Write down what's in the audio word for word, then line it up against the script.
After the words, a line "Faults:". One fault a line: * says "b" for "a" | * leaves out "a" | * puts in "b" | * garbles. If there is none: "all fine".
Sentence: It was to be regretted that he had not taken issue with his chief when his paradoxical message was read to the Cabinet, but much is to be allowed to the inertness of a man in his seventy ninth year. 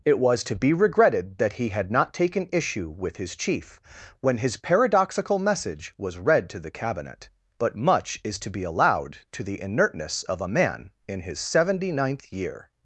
It was to be regretted that he had not taken issue with his chief when his paradoxical message was read to the Cabinet, but much is to be allowed to the inertness of a man in his seventy ninth year.
Faults:
all fine